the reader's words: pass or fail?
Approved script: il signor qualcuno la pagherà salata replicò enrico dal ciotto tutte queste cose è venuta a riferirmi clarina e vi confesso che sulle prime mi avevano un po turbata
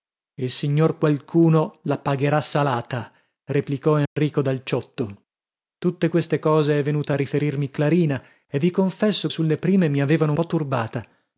fail